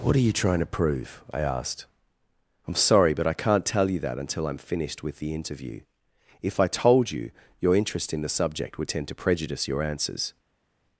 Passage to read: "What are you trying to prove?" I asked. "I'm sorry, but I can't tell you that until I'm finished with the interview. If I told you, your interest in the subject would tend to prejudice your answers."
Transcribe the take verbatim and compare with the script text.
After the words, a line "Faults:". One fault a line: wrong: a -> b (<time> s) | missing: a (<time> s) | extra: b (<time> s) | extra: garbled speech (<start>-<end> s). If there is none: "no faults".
"What are you trying to prove?" I asked. "I'm sorry, but I can't tell you that until I'm finished with the interview. If I told you, your interest in the subject would tend to prejudice your answers."
Faults:
no faults